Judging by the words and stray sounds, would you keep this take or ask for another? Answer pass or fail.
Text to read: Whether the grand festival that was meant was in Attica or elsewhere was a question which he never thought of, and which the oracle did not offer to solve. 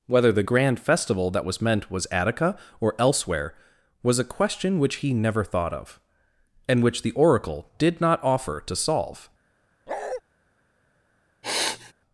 fail